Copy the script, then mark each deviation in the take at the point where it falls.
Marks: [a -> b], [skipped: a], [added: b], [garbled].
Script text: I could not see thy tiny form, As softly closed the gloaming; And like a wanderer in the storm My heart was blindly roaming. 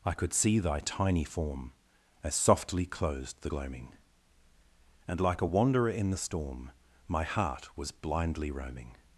I could [skipped: not] see thy tiny form, As softly closed the gloaming; And like a wanderer in the storm My heart was blindly roaming.